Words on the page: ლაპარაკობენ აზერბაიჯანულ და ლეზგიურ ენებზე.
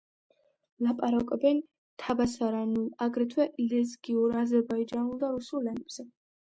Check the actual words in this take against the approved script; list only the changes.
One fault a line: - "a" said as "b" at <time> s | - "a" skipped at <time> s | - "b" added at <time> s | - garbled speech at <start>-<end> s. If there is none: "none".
- "თაბასარანულ აგრეთვე ლეზგიურ" added at 2.0 s
- "ლეზგიურ" said as "რუსულ" at 5.4 s